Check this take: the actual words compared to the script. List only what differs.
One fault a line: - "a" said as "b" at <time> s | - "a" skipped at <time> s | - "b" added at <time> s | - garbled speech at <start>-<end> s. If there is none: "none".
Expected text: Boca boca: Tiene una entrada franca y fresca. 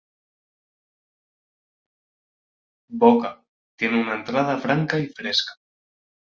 - "boca" skipped at 3.4 s